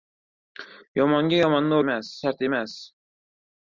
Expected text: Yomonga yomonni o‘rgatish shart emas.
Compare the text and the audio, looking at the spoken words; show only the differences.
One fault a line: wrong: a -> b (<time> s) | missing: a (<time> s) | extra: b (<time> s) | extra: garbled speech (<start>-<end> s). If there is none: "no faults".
wrong: o‘rgatish -> emas (1.9 s)